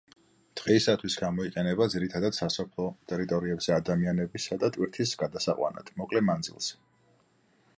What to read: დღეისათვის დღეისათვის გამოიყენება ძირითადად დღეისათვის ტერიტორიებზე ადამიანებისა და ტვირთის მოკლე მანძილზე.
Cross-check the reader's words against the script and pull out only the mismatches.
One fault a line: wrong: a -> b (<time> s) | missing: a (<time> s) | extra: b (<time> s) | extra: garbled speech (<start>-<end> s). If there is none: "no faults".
missing: დღეისათვის (1.2 s)
wrong: დღეისათვის -> სასოფლო (2.4 s)
extra: გადასაყვანად (5.2 s)